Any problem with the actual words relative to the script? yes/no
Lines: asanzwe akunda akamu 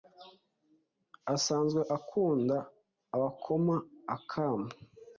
yes